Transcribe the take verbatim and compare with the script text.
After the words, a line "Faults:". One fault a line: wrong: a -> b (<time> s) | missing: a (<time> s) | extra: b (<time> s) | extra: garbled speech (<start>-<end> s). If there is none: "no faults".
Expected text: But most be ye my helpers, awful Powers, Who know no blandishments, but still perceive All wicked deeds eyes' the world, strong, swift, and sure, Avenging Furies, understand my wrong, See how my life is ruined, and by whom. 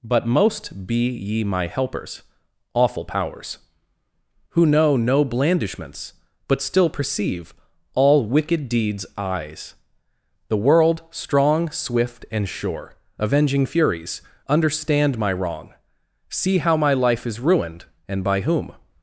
But most be ye my helpers, awful Powers, Who know no blandishments, but still perceive All wicked deeds eyes' the world, strong, swift, and sure, Avenging Furies, understand my wrong, See how my life is ruined, and by whom.
Faults:
no faults